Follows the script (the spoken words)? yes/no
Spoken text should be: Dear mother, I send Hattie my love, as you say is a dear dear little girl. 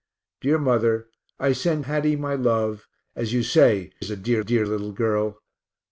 yes